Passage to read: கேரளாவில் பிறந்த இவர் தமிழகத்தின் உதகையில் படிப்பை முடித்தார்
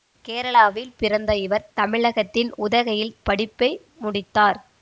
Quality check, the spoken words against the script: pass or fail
pass